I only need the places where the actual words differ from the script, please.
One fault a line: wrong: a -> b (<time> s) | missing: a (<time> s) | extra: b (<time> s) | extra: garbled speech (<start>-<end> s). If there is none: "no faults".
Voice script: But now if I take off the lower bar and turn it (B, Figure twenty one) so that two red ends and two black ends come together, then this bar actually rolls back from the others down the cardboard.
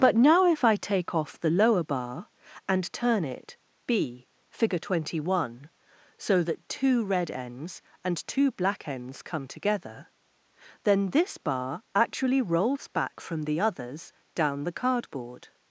no faults